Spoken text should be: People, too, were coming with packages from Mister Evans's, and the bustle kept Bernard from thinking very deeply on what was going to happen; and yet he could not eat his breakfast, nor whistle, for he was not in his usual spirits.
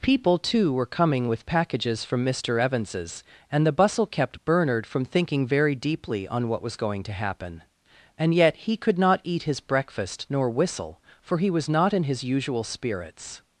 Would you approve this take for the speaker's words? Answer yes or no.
yes